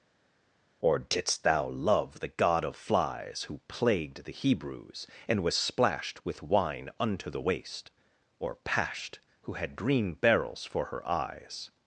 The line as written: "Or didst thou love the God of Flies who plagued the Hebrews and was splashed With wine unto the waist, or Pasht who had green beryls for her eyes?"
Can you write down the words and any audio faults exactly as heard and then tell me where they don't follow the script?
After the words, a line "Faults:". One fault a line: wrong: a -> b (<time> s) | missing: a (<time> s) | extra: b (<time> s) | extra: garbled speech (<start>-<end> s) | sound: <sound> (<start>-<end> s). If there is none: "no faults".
"Or didst thou love the God of Flies who plagued the Hebrews and was splashed With wine unto the waist, or Pasht who had green beryls for her eyes?"
Faults:
no faults